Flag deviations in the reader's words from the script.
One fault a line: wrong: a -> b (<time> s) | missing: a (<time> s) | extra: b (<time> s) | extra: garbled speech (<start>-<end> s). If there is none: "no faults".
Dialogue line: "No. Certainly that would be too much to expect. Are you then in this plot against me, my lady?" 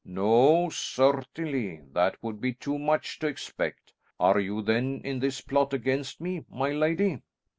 no faults